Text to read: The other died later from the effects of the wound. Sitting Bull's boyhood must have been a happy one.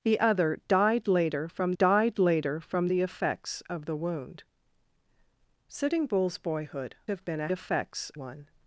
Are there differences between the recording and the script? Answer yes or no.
yes